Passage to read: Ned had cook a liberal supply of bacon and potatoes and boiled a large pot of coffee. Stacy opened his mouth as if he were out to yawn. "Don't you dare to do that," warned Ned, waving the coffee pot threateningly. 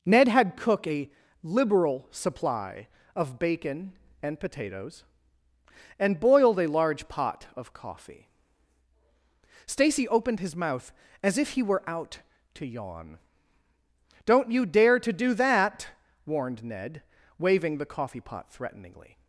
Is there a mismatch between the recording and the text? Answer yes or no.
no